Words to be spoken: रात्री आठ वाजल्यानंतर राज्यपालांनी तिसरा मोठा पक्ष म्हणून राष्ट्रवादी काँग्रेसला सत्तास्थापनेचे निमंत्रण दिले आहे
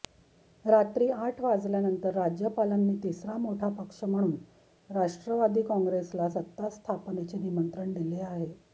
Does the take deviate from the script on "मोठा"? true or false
false